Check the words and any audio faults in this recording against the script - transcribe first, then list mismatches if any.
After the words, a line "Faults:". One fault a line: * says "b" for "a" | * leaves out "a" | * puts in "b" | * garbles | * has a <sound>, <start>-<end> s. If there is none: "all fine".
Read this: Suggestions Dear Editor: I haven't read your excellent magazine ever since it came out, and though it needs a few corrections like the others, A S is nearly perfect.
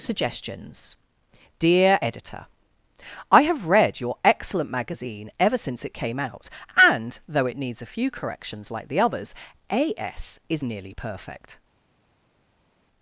Suggestions Dear Editor: I have read your excellent magazine ever since it came out, and though it needs a few corrections like the others, A S is nearly perfect.
Faults:
* says "have" for "haven't"